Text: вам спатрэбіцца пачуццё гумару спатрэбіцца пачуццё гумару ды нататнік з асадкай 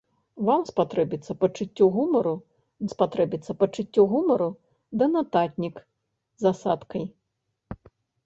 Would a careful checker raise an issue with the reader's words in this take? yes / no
no